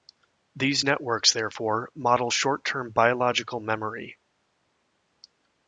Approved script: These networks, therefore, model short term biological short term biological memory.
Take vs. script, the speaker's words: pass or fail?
fail